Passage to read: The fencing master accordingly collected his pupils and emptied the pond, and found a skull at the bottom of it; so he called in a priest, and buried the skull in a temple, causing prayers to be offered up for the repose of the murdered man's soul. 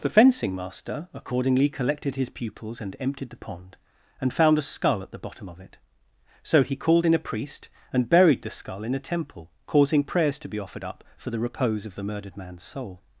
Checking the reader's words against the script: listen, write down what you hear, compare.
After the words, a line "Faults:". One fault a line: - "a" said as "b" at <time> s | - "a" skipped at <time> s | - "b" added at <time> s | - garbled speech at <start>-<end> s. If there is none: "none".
The fencing master accordingly collected his pupils and emptied the pond, and found a skull at the bottom of it; so he called in a priest, and buried the skull in a temple, causing prayers to be offered up for the repose of the murdered man's soul.
Faults:
none